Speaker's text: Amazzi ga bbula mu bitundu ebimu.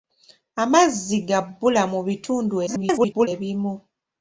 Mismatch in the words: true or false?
true